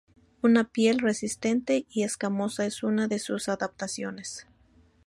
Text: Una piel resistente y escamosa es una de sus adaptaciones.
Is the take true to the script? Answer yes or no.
yes